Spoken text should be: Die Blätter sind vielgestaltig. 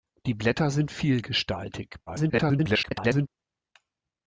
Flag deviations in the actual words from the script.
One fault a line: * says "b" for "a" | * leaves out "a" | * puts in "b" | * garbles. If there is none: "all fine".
* garbles